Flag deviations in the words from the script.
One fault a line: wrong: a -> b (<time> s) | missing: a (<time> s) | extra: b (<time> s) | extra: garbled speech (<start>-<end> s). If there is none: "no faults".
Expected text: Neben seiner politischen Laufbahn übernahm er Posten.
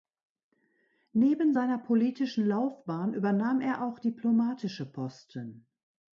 extra: auch diplomatische (3.8 s)